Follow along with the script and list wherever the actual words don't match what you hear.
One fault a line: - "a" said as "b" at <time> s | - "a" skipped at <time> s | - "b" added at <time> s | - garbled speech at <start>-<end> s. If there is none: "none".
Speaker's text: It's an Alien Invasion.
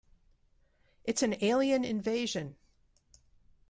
none